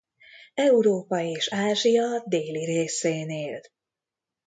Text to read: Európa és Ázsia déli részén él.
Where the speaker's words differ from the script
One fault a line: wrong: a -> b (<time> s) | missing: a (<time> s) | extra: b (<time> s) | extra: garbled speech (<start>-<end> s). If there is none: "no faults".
no faults